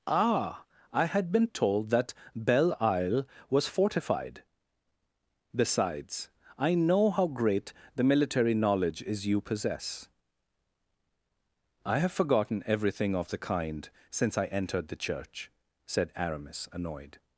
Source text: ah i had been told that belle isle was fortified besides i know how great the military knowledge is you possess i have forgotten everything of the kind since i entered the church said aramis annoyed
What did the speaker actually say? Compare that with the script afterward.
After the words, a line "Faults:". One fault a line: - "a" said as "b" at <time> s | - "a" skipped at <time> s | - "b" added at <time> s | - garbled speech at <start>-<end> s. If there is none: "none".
ah i had been told that belle isle was fortified besides i know how great the military knowledge is you possess i have forgotten everything of the kind since i entered the church said aramis annoyed
Faults:
none